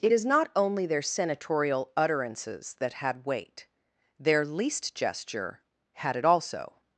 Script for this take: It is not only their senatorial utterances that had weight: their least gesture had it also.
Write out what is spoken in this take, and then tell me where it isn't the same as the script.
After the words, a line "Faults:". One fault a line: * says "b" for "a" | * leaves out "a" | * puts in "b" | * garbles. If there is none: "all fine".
It is not only their senatorial utterances that had weight: their least gesture had it also.
Faults:
all fine